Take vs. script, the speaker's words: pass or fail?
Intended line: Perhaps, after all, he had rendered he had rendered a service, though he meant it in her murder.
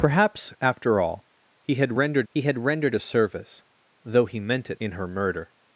pass